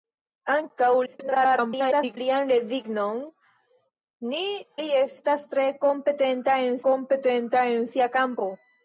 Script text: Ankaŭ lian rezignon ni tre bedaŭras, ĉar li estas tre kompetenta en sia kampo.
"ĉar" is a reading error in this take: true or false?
true